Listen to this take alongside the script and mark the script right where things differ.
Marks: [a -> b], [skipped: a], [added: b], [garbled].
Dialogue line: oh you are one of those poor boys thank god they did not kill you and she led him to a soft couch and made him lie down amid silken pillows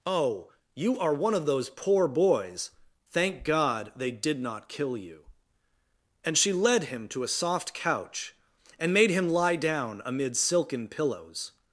oh you are one of those poor boys thank god they did not kill you and she led him to a soft couch and made him lie down amid silken pillows